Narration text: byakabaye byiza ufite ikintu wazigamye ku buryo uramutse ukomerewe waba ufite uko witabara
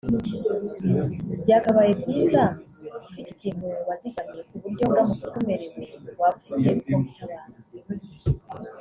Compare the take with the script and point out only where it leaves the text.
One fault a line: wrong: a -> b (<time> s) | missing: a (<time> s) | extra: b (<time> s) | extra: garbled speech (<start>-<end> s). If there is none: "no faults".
no faults